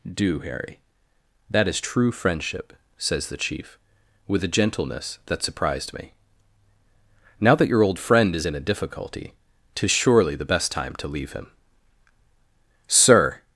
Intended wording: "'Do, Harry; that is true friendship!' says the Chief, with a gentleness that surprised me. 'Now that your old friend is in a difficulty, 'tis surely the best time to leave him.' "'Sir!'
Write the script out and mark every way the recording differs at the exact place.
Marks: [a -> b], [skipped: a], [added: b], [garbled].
"'Do, Harry; that is true friendship!' says the Chief, with a gentleness that surprised me. 'Now that your old friend is in a difficulty, 'tis surely the best time to leave him.' "'Sir!'